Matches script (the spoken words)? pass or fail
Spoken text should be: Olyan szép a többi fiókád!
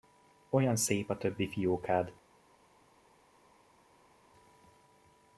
pass